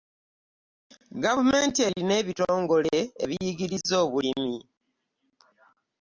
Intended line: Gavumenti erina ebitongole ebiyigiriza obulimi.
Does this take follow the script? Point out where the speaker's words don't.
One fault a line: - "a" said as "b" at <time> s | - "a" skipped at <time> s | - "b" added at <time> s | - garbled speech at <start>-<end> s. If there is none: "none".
none